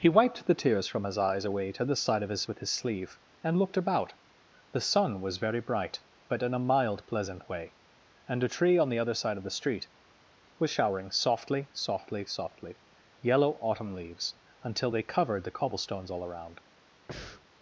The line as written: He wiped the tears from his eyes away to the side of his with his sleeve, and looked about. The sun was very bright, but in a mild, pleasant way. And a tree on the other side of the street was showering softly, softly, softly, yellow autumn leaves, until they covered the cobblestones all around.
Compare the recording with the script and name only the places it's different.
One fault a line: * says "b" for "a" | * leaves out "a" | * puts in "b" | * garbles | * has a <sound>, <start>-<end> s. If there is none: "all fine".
* has a breath, 17.1-17.5 s